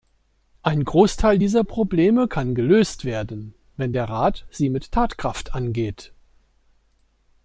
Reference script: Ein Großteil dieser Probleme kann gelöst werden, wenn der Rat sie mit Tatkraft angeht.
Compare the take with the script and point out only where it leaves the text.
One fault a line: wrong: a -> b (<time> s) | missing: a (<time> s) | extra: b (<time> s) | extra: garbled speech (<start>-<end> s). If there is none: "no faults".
no faults